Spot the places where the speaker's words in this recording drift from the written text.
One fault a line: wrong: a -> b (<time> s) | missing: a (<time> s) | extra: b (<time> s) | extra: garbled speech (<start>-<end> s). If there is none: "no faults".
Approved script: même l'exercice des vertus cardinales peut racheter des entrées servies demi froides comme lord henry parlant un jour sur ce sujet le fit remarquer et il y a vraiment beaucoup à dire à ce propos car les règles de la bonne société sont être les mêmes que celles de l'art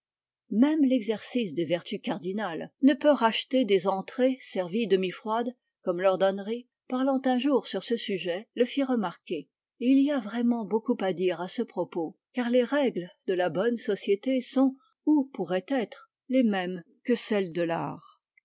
extra: ne (2.8 s)
extra: ou pourraient (15.1 s)